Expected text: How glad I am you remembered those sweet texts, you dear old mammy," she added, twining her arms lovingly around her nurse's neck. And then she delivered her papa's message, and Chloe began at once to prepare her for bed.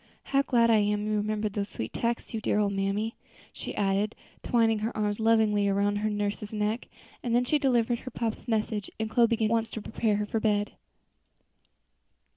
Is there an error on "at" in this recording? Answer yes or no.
yes